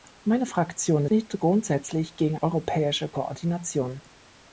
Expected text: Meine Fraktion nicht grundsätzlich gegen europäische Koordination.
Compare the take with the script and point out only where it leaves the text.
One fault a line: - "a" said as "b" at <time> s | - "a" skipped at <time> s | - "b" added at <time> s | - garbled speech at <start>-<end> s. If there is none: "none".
none